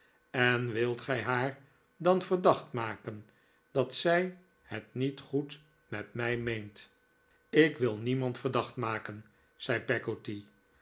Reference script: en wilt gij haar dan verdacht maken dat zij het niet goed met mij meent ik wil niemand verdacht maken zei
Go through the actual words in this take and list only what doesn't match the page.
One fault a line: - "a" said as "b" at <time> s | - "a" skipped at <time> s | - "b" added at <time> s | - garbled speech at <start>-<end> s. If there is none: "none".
none